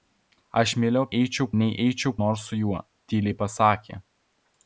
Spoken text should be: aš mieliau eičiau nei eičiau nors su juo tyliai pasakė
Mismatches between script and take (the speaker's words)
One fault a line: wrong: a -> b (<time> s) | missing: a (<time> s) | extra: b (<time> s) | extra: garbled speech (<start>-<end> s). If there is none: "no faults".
no faults